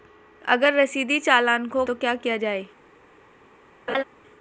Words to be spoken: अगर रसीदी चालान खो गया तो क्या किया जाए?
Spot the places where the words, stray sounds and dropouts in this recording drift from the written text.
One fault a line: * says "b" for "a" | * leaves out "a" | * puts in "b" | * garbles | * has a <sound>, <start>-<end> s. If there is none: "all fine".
* leaves out "गया"
* has a laugh, 3.9-4.0 s